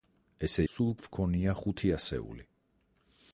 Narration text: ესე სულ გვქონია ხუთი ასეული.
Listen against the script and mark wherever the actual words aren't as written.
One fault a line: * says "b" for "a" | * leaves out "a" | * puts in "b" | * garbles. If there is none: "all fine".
all fine